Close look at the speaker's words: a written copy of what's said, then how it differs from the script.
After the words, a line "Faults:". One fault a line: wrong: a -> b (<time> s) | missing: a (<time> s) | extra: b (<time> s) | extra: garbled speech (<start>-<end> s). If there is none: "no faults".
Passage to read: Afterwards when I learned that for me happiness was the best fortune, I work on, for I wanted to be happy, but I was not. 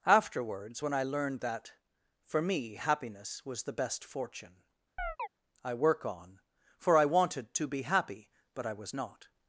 Afterwards when I learned that for me happiness was the best fortune, I work on, for I wanted to be happy, but I was not.
Faults:
no faults